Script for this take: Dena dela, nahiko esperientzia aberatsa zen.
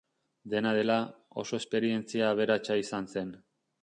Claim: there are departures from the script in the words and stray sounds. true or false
true